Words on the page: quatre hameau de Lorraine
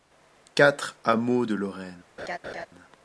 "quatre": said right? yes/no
yes